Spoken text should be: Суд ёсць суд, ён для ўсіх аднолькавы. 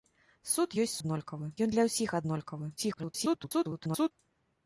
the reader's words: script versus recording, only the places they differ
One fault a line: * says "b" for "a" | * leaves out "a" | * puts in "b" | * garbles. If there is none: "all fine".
* says "аднолькавы" for "суд"
* garbles